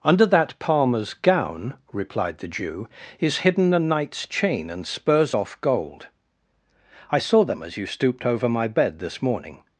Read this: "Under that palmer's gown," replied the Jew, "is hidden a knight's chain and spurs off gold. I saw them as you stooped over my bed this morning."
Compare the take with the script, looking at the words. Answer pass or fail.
pass